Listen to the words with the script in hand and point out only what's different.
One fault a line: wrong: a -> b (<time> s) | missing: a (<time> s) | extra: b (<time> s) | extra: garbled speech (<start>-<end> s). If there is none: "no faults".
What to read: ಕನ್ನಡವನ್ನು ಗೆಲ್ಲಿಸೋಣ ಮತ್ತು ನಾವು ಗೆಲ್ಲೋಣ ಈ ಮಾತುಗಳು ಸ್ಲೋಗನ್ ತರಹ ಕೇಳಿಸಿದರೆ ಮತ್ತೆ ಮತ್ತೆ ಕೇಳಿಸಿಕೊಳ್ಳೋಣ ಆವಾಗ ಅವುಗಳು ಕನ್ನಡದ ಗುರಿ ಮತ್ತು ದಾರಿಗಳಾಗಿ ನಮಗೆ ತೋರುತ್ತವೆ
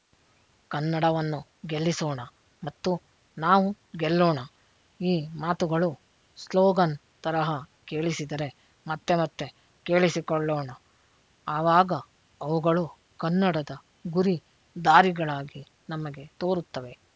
missing: ಮತ್ತು (14.4 s)